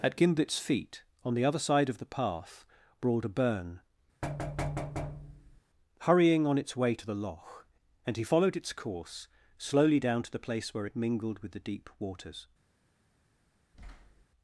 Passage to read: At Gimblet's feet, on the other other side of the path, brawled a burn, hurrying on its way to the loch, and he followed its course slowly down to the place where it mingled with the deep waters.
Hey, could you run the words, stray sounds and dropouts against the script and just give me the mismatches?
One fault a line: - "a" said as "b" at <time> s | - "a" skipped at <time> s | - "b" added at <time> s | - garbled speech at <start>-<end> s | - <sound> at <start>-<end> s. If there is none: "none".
- "other" skipped at 1.6 s
- thud at 4.2-5.6 s
- thud at 13.7-14.2 s